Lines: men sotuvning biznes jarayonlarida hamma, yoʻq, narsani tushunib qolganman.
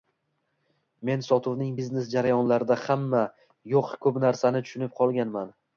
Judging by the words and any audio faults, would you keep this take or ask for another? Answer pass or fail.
fail